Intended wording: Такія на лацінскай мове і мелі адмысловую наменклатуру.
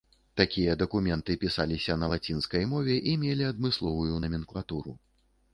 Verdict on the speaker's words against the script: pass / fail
fail